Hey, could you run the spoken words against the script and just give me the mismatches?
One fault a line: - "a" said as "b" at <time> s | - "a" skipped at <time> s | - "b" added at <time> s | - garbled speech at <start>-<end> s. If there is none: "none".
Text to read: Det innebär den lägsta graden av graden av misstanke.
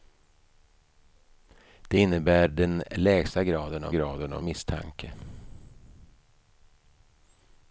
none